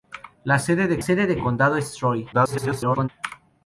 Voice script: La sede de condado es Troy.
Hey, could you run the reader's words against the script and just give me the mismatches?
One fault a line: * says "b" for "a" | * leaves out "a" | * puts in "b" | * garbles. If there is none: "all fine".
* puts in "sede de"
* garbles